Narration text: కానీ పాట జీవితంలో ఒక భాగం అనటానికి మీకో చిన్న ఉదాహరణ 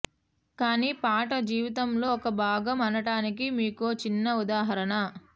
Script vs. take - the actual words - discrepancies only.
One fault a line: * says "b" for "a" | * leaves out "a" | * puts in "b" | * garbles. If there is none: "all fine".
all fine